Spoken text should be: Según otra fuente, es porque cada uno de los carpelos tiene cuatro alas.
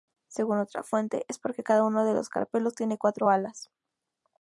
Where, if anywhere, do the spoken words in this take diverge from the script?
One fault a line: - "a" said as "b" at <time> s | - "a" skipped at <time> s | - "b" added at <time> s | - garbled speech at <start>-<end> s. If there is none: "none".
none